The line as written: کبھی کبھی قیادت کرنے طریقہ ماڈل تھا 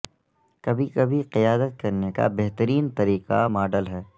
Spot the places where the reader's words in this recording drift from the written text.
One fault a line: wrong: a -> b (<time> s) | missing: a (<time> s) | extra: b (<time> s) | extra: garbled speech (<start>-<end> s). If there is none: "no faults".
extra: کا بہترین (2.1 s)
wrong: تھا -> ہے (3.9 s)